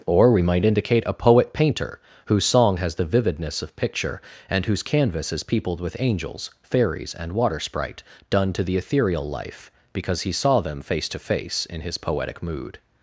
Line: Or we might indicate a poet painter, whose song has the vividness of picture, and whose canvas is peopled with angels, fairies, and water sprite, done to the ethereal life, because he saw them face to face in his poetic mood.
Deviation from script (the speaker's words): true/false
false